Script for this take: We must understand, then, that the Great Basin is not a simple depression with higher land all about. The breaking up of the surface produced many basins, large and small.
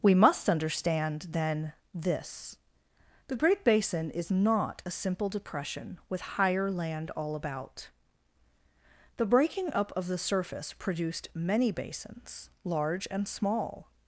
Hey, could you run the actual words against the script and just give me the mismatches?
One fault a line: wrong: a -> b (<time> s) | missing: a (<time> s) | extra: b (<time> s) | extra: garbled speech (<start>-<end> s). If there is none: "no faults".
wrong: that -> this (1.9 s)